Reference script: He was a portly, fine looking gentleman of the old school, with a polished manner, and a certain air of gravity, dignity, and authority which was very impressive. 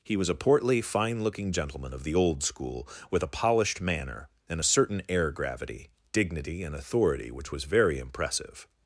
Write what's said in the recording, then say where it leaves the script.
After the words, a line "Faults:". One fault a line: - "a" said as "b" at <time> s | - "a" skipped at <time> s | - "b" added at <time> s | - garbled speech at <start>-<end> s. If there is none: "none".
He was a portly, fine looking gentleman of the old school, with a polished manner, and a certain air gravity, dignity, and authority which was very impressive.
Faults:
- "of" skipped at 5.3 s